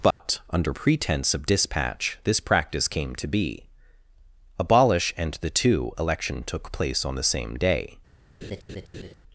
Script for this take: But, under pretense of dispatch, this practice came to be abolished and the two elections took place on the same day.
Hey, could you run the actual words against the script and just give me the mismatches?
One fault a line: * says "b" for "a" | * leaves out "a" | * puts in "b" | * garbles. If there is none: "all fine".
* says "abolish" for "abolished"
* says "election" for "elections"